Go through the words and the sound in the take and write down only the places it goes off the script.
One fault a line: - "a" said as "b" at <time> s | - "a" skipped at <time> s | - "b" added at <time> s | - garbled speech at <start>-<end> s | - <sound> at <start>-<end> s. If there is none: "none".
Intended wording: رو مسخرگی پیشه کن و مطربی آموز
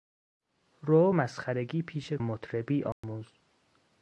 - "کن و" skipped at 2.2 s
- dropout at 2.9-3.0 s